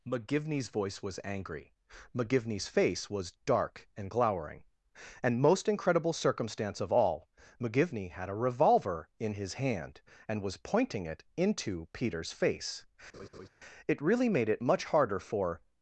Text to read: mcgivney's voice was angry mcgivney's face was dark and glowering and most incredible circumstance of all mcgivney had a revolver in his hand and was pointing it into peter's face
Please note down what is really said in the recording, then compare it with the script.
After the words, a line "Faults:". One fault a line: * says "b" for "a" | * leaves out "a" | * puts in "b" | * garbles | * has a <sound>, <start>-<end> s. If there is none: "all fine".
mcgivney's voice was angry mcgivney's face was dark and glowering and most incredible circumstance of all mcgivney had a revolver in his hand and was pointing it into peter's face it really made it much harder for
Faults:
* has a laugh, 13.1-13.5 s
* puts in "it really made it much harder for"